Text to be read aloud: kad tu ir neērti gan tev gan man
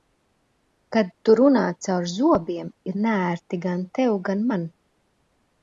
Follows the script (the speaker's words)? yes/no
no